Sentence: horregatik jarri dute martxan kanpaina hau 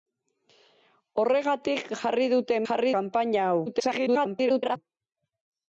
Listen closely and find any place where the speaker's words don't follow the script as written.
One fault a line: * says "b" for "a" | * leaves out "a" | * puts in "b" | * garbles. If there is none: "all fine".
* says "jarri" for "martxan"
* garbles